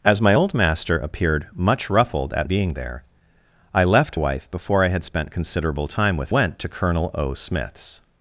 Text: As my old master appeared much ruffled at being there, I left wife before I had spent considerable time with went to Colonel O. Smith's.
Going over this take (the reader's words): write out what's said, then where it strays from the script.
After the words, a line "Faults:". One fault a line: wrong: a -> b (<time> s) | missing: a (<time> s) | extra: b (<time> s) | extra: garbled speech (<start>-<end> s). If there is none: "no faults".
As my old master appeared much ruffled at being there, I left wife before I had spent considerable time with went to Colonel O. Smith's.
Faults:
no faults